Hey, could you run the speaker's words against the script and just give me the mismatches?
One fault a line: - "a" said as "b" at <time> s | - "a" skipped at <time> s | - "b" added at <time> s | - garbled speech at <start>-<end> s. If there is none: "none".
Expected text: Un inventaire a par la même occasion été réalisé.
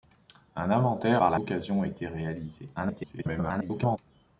- "a" skipped at 1.2 s
- "même" skipped at 1.4 s
- garbled speech at 2.8-4.0 s